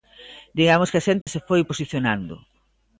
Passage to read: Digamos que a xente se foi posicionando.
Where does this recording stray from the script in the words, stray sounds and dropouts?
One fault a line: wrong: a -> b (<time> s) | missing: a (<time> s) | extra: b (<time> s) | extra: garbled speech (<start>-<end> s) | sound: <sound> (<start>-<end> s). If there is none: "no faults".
sound: dropout (1.2-1.3 s)